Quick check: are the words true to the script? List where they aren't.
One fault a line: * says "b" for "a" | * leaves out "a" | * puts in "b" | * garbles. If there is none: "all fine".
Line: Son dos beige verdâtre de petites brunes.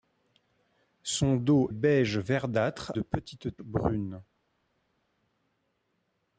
all fine